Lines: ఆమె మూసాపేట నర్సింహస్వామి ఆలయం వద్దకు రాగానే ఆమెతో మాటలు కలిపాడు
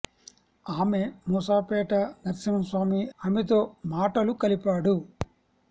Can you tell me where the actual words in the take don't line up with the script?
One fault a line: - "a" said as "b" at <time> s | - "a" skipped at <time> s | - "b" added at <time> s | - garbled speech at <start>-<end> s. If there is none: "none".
- "ఆలయం వద్దకు రాగానే" skipped at 3.0 s